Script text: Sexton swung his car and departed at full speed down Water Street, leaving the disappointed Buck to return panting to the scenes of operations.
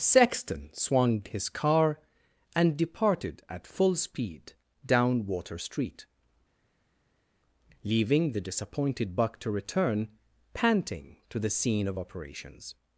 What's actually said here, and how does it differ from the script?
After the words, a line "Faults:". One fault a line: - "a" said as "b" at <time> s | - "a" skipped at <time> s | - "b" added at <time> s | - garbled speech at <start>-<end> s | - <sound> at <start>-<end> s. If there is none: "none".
Sexton swung his car and departed at full speed down Water Street, leaving the disappointed Buck to return panting to the scene of operations.
Faults:
- "scenes" said as "scene" at 11.5 s